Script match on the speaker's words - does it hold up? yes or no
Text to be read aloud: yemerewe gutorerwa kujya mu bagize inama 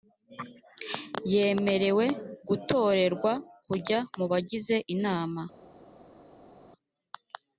yes